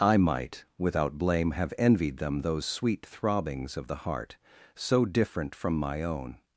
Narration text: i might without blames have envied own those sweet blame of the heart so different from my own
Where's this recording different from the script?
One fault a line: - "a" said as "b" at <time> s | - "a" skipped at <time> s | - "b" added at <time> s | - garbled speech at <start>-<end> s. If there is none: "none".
- "blames" said as "blame" at 1.2 s
- "own" said as "them" at 2.2 s
- "blame" said as "throbbings" at 3.1 s